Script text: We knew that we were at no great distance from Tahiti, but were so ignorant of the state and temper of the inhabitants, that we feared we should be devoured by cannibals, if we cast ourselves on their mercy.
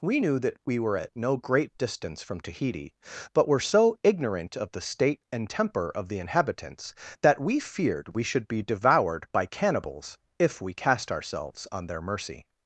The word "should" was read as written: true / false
true